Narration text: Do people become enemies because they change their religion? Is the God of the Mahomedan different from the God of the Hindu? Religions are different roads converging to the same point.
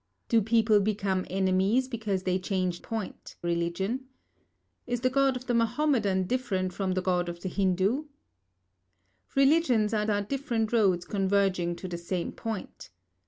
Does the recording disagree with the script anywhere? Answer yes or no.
yes